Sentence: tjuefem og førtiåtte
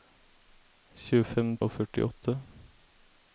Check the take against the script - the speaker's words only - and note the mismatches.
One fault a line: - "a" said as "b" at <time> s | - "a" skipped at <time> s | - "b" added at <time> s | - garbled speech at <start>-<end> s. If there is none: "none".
none